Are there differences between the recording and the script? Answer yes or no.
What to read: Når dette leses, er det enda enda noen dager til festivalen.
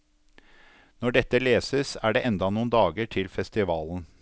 yes